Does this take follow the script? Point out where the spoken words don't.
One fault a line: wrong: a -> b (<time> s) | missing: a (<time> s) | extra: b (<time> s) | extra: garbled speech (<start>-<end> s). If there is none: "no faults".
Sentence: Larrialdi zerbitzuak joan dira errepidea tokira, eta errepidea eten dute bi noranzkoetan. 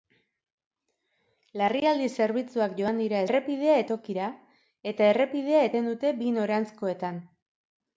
no faults